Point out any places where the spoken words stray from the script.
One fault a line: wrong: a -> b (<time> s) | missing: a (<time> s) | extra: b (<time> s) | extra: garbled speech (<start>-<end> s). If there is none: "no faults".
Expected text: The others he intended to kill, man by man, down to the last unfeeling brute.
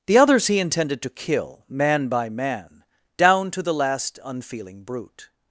no faults